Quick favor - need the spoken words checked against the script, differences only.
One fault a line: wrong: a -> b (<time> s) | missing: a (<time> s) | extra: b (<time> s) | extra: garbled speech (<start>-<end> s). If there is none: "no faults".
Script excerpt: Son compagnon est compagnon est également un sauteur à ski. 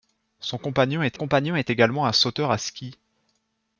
no faults